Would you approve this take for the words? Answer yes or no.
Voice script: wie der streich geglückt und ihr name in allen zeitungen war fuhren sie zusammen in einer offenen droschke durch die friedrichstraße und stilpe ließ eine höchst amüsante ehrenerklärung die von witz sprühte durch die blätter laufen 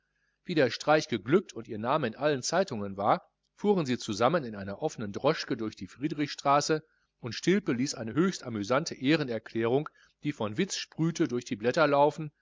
yes